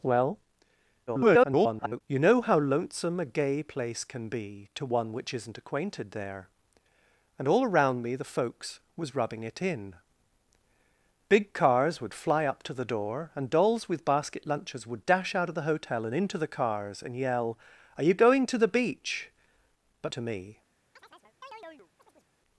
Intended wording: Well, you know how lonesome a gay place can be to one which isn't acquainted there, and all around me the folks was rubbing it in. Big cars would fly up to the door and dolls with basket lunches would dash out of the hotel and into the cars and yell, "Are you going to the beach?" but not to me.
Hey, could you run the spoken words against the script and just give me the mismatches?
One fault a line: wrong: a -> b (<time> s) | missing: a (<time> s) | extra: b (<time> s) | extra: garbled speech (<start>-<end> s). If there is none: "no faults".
extra: garbled speech (1.1-2.0 s)
missing: not (20.1 s)